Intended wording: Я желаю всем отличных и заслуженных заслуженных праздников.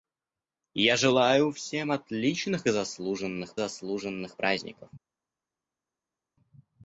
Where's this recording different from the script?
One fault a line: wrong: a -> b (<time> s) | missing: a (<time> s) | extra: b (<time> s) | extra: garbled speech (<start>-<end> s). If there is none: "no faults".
no faults